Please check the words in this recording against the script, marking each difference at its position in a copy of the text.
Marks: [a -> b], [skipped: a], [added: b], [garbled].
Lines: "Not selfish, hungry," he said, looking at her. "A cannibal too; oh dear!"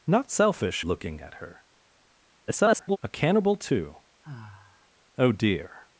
"Not selfish, [skipped: hungry," he said,] looking at her. [garbled] "A cannibal too; oh dear!"